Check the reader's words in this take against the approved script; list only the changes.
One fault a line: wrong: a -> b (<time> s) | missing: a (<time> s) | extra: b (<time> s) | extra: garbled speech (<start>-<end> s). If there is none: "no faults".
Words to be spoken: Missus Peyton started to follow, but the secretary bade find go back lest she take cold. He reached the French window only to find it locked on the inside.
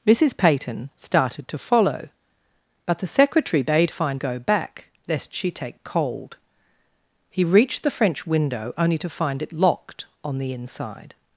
no faults